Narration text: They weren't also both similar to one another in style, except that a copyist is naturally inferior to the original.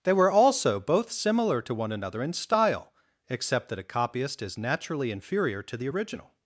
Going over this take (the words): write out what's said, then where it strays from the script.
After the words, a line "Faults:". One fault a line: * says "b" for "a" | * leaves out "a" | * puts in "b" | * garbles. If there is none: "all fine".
They were also both similar to one another in style, except that a copyist is naturally inferior to the original.
Faults:
* says "were" for "weren't"